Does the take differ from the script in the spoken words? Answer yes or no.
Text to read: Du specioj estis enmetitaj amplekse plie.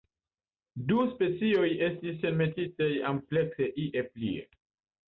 yes